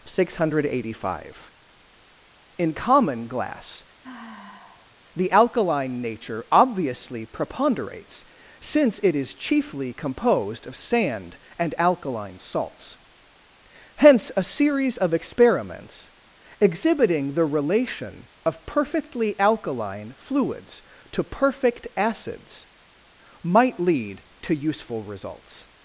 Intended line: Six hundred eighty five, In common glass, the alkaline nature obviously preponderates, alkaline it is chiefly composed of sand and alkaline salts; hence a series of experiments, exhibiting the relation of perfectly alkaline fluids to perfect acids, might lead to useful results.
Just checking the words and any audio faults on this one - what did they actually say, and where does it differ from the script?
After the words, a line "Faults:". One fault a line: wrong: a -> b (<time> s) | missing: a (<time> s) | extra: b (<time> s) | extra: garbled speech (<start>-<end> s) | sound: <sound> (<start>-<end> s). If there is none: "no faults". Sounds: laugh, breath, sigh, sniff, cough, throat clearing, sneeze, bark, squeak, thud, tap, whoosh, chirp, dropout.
Six hundred eighty five, In common glass, the alkaline nature obviously preponderates, since it is chiefly composed of sand and alkaline salts; hence a series of experiments, exhibiting the relation of perfectly alkaline fluids to perfect acids, might lead to useful results.
Faults:
sound: sigh (4.0-5.0 s)
wrong: alkaline -> since (8.6 s)